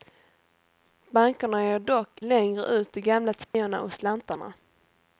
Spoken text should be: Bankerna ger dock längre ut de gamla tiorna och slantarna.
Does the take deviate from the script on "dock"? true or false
false